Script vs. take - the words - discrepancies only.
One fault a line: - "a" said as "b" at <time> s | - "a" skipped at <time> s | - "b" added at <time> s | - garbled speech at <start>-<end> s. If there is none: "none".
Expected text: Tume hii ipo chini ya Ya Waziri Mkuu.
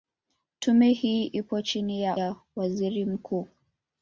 none